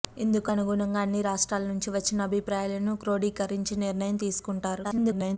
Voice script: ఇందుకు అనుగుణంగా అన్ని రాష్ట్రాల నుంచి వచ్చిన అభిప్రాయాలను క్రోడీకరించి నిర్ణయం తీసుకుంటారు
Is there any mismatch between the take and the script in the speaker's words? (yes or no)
yes